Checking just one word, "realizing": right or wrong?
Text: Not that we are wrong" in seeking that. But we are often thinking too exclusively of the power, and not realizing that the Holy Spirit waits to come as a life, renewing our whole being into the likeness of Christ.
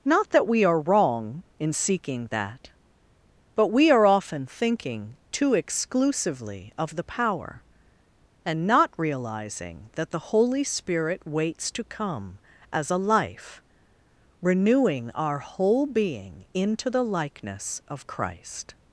right